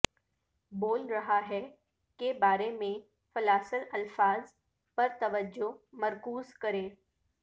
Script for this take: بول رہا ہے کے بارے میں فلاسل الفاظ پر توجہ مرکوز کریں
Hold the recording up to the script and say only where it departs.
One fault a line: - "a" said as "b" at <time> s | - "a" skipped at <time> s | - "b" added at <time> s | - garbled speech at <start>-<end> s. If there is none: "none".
none